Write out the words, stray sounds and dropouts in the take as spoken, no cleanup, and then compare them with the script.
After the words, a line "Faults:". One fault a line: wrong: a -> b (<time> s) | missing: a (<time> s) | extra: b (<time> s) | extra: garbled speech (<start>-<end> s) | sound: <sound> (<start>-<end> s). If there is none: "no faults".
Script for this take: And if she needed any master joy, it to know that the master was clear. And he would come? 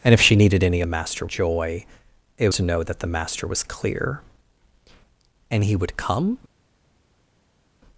And if she needed any master joy, it to know that the master was clear. And he would come?
Faults:
no faults